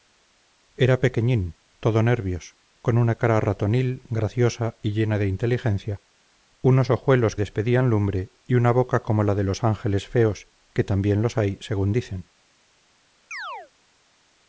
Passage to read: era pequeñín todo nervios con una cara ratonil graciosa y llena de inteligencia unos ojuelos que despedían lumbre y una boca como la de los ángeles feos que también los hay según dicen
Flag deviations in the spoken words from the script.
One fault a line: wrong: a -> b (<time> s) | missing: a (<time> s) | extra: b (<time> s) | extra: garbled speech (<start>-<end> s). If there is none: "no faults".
missing: que (7.3 s)